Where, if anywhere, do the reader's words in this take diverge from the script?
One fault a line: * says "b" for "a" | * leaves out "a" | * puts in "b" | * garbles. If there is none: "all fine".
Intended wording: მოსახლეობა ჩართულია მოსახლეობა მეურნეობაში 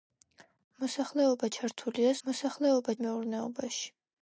all fine